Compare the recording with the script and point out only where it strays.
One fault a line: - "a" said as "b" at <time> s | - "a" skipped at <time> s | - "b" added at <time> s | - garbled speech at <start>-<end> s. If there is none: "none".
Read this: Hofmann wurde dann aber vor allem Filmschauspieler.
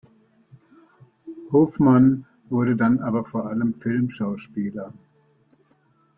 none